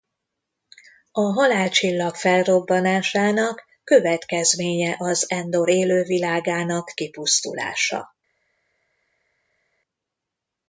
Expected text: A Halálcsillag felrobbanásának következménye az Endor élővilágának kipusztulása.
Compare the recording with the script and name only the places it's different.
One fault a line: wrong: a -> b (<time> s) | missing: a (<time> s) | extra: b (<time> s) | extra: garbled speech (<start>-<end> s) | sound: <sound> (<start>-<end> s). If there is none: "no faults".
no faults